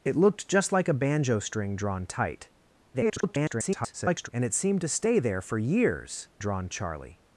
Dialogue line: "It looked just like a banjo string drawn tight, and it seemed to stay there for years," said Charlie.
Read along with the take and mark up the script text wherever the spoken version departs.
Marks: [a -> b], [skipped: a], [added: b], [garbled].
"It looked just like a banjo string drawn tight, [garbled] and it seemed to stay there for years," [said -> drawn] Charlie.